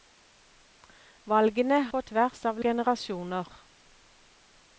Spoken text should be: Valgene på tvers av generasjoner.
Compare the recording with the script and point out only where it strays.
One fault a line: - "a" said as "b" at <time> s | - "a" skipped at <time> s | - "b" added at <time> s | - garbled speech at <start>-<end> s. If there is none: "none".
none